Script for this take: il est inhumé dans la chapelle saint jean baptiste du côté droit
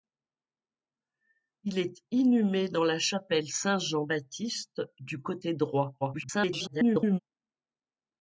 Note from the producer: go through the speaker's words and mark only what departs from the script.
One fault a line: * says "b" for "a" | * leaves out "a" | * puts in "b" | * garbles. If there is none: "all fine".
* garbles